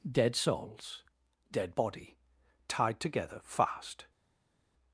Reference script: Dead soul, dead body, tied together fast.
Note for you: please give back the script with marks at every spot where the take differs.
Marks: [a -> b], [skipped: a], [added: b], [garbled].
Dead [soul, -> souls] dead body, tied together fast.